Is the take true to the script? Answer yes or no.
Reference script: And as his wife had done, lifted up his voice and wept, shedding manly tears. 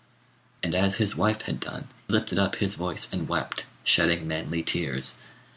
yes